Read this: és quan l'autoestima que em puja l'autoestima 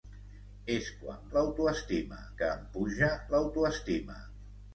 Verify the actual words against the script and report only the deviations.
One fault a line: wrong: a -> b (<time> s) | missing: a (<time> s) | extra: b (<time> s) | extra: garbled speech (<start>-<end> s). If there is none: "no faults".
no faults